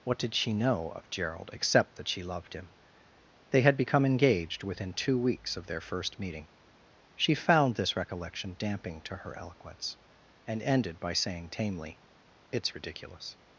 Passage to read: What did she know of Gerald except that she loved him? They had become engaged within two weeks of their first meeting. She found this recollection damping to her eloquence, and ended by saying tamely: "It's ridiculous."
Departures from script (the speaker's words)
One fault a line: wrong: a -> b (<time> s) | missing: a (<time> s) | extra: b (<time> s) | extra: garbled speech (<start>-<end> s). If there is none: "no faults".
no faults